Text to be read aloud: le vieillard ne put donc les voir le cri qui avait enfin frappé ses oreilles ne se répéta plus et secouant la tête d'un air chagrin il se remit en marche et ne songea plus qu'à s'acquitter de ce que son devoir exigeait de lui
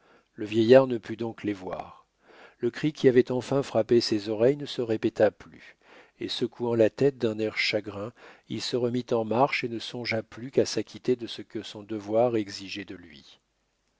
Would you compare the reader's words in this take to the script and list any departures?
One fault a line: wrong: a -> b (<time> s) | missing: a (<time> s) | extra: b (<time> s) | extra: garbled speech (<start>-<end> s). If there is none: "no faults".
no faults